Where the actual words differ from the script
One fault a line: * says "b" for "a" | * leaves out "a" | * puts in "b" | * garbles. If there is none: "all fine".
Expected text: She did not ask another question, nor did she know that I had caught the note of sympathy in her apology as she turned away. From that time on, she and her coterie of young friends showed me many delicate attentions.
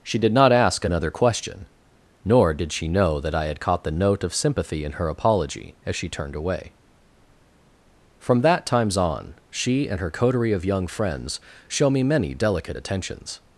* says "times" for "time"
* says "show" for "showed"